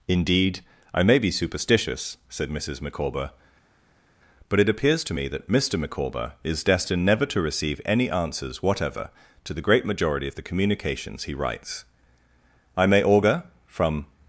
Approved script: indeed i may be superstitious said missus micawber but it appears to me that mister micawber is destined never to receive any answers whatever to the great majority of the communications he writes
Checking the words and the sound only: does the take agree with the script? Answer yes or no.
no